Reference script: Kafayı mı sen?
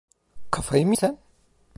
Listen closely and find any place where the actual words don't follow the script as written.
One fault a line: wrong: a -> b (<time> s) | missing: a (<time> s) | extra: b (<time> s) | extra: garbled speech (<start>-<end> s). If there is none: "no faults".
no faults